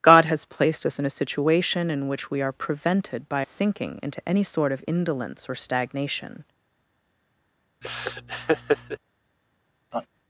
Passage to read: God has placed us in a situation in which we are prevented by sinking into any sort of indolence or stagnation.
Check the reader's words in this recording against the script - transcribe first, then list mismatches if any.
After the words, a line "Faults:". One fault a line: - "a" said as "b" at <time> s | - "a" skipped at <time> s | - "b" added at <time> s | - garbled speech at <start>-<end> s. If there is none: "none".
God has placed us in a situation in which we are prevented by sinking into any sort of indolence or stagnation.
Faults:
none